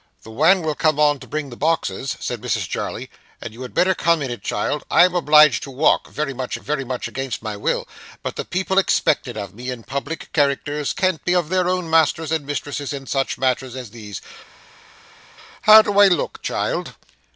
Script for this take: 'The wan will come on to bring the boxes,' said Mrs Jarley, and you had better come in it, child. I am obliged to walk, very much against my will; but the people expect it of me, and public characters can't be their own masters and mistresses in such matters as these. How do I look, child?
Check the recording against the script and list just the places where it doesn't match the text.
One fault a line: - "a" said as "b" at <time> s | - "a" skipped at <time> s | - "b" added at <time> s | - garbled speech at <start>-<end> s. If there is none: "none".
- "very much" added at 6.6 s